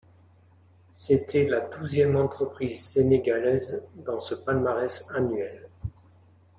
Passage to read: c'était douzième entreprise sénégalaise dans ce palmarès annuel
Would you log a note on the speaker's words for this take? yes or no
yes